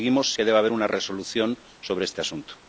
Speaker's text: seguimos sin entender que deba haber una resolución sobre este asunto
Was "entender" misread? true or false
true